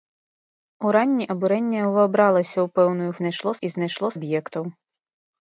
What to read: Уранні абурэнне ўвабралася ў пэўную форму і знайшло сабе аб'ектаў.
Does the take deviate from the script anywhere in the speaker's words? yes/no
yes